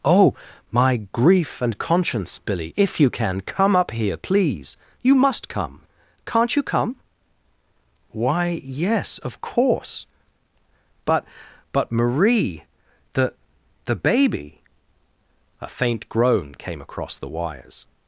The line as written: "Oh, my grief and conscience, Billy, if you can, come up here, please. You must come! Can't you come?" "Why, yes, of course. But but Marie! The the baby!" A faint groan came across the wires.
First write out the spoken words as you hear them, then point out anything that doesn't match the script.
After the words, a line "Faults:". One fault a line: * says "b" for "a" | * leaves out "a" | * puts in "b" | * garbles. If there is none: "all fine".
"Oh, my grief and conscience, Billy, if you can, come up here, please. You must come! Can't you come?" "Why, yes, of course. But but Marie! The the baby!" A faint groan came across the wires.
Faults:
all fine